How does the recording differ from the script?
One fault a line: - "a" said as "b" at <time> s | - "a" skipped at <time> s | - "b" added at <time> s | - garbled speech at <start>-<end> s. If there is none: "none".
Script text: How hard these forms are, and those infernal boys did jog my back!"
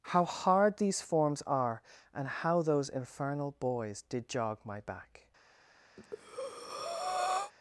- "how" added at 2.3 s